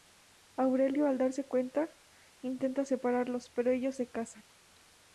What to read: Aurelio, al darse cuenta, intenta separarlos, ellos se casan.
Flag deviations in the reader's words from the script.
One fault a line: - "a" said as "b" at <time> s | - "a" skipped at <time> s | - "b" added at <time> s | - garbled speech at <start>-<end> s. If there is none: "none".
- "pero" added at 3.5 s